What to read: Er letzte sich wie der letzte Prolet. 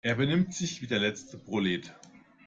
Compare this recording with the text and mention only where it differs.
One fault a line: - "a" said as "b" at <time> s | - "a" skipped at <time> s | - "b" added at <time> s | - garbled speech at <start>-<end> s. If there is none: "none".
- "letzte" said as "benimmt" at 0.1 s